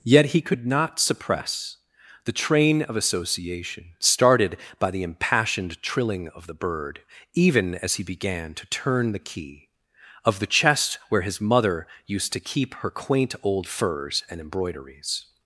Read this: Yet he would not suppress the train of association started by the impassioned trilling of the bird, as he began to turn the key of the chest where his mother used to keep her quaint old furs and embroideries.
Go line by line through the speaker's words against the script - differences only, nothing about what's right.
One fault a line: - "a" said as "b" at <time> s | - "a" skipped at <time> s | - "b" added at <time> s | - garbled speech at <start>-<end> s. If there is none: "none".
- "would" said as "could" at 0.4 s
- "even" added at 7.3 s